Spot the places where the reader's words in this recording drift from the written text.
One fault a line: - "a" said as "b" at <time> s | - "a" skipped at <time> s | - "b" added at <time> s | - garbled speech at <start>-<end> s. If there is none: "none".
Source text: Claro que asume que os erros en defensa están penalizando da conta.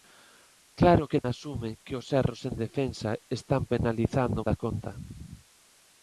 none